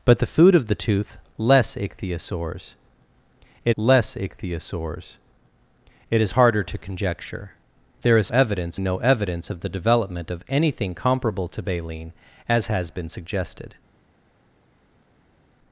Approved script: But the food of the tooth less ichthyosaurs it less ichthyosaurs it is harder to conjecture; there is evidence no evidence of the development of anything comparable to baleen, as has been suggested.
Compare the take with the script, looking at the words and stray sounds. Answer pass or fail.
pass